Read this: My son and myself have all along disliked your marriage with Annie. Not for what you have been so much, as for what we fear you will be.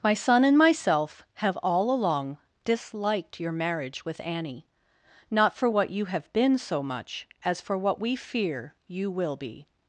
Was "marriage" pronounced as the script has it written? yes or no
yes